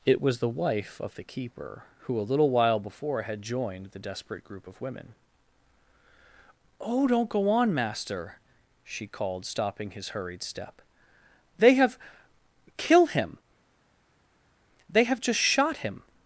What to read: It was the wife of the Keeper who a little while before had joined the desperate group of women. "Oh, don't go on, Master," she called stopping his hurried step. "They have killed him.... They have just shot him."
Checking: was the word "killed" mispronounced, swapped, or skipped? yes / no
yes